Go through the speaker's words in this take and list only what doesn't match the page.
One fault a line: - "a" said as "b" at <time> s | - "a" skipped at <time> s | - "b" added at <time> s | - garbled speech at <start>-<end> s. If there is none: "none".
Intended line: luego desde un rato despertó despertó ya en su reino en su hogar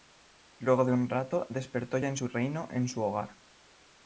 - "desde" said as "de" at 0.8 s
- "despertó" skipped at 2.0 s